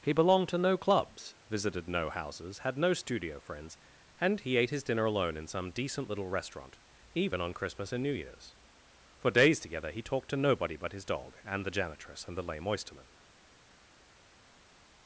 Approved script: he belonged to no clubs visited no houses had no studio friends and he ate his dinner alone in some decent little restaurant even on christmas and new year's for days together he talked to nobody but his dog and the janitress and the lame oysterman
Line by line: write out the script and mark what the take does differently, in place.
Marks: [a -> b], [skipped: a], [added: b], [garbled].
he belonged to no clubs visited no houses had no studio friends and he ate his dinner alone in some decent little restaurant even on christmas and new year's for days together he talked to nobody but his dog and the janitress and the lame oysterman